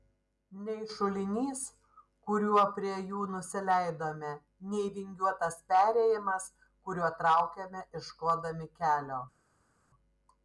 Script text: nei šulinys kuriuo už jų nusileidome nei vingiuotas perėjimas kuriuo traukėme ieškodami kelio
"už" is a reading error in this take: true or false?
true